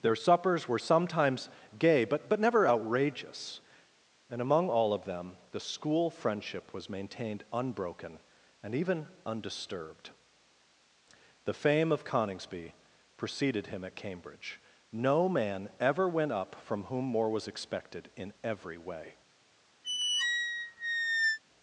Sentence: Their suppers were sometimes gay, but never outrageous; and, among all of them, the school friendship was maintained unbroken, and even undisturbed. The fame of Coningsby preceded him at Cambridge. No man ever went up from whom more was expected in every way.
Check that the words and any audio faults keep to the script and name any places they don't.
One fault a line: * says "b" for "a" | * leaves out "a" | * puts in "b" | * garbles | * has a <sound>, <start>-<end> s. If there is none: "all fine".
* puts in "but"
* has a squeak, 19.8-21.4 s